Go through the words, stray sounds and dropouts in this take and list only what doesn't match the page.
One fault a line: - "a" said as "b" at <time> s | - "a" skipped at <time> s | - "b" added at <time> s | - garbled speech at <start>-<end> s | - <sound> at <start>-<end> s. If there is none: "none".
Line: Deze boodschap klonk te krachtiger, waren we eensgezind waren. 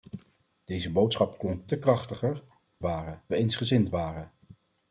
none